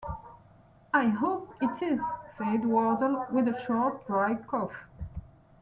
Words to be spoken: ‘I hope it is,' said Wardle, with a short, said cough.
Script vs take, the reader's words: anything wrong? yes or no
yes